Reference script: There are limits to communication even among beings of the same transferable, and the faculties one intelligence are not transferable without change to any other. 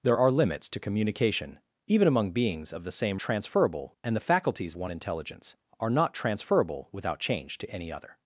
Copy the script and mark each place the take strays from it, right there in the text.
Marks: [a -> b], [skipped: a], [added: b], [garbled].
There are limits to communication even among beings of the same transferable, and the faculties one intelligence are not transferable without change to any other.